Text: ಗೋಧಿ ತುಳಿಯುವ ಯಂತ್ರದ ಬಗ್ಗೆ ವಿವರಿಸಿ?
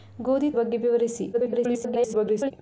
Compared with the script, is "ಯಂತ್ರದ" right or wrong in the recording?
wrong